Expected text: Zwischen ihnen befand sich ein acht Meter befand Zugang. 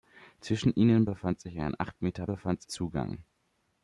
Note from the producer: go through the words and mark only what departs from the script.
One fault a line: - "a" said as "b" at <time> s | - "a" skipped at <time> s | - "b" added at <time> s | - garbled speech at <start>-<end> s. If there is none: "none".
none